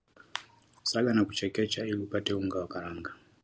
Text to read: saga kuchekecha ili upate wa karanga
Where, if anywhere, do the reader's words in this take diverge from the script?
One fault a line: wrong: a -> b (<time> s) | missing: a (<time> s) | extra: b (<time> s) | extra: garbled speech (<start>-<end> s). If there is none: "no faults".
extra: na (1.1 s)
extra: unga (2.3 s)